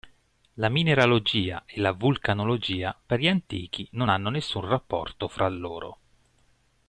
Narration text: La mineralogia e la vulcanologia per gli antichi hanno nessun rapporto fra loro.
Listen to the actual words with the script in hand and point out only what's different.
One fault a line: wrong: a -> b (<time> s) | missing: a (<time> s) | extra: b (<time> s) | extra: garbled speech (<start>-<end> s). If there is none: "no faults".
extra: non (3.9 s)